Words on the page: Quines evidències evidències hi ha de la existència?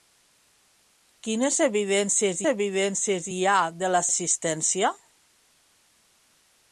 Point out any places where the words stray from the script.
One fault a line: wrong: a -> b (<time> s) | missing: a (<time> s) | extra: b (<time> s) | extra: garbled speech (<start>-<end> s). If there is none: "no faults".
no faults